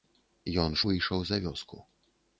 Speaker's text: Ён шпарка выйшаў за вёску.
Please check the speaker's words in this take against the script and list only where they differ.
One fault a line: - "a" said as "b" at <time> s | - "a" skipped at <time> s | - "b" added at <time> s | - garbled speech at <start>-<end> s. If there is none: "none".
- "шпарка" skipped at 0.8 s